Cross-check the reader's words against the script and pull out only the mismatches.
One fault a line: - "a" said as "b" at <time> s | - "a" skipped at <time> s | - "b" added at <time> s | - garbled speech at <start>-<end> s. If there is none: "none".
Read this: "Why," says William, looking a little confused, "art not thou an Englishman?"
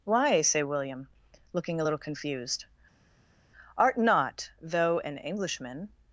- "says" said as "say" at 0.4 s
- "thou" said as "though" at 4.6 s